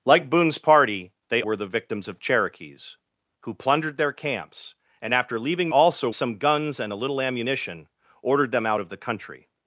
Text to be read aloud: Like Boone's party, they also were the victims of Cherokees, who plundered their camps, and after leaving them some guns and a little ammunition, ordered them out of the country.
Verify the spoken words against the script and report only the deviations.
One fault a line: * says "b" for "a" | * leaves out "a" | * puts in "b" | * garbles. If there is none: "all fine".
* leaves out "also"
* says "also" for "them"